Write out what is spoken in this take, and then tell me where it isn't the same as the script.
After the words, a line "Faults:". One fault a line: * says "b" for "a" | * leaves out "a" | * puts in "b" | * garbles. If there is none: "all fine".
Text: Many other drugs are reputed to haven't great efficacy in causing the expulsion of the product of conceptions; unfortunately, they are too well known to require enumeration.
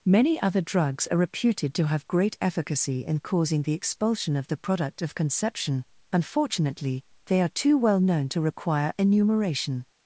Many other drugs are reputed to have great efficacy in causing the expulsion of the product of conception; unfortunately, they are too well known to require enumeration.
Faults:
* says "have" for "haven't"
* says "conception" for "conceptions"